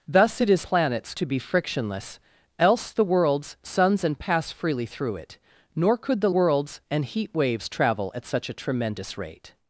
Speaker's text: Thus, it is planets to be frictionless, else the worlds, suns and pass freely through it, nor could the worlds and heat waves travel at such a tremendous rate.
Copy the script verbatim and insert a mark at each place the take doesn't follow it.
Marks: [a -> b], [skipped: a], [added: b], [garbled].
Thus, it is planets to be frictionless, else the worlds, suns and pass freely through it, nor could the worlds and heat waves travel at such a tremendous rate.